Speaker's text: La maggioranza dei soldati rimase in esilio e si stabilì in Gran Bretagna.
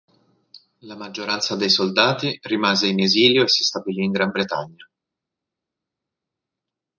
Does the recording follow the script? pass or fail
pass